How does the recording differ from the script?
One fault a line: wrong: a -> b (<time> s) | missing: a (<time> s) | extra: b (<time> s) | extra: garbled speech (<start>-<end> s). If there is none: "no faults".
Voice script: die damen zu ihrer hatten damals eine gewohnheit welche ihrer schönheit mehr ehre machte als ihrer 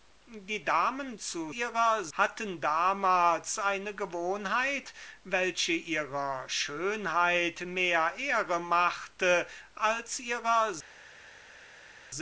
no faults